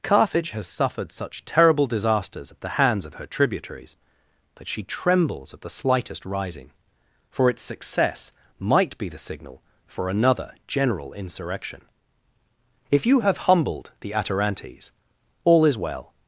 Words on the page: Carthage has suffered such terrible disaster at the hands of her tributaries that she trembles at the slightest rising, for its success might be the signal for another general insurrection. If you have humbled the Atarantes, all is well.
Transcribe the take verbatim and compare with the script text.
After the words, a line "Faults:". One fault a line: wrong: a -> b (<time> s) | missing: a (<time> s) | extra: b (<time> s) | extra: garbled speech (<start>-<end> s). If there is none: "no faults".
Carthage has suffered such terrible disasters at the hands of her tributaries that she trembles at the slightest rising, for its success might be the signal for another general insurrection. If you have humbled the Atarantes, all is well.
Faults:
wrong: disaster -> disasters (1.9 s)